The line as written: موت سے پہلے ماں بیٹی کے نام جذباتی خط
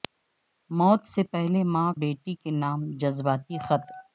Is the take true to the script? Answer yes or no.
yes